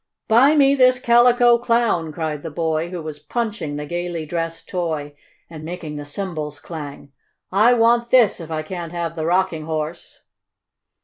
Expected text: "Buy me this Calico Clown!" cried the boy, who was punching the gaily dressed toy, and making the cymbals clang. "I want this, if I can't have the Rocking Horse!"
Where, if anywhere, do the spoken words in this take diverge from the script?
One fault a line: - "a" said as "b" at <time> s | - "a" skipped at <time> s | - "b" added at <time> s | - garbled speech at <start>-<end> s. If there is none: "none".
none